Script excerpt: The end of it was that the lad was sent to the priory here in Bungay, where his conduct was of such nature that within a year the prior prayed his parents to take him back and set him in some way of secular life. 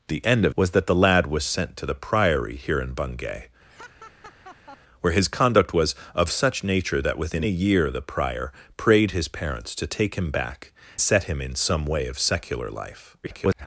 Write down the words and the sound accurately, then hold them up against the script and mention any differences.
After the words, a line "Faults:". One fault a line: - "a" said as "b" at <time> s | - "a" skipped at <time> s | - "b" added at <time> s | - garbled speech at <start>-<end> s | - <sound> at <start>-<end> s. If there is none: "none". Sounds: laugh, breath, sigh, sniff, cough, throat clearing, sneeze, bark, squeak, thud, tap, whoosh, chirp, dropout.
The end of was that the lad was sent to the priory here in Bungay, where his conduct was of such nature that within a year the prior prayed his parents to take him back set him in some way of secular life. [garbled]
Faults:
- "it" skipped at 0.6 s
- laugh at 3.7-4.8 s
- "and" skipped at 10.7 s
- garbled speech at 13.2-13.7 s